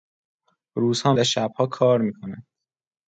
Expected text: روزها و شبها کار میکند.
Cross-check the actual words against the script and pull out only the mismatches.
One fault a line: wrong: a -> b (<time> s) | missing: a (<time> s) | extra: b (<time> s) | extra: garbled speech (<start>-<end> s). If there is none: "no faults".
no faults